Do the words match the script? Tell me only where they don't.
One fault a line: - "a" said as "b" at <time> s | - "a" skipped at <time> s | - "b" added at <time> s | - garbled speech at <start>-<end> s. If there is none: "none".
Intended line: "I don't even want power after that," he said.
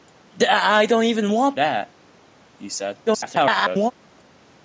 - "power after" skipped at 1.6 s
- garbled speech at 3.1-3.9 s